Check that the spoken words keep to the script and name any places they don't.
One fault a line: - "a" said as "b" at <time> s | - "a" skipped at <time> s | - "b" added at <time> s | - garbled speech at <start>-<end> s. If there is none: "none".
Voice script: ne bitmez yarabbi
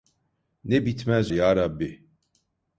none